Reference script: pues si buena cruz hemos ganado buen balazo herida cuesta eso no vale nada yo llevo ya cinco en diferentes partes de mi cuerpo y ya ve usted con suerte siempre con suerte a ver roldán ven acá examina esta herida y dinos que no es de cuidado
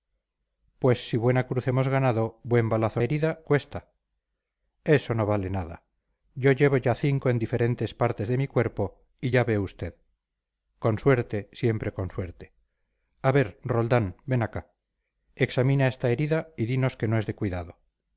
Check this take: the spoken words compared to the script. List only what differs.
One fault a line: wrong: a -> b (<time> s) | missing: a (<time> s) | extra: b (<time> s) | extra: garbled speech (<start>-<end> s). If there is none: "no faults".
no faults